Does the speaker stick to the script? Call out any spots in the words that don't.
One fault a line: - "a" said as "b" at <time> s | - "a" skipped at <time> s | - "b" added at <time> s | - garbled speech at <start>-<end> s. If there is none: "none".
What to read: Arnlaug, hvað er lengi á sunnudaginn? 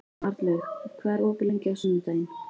- "opið" added at 1.3 s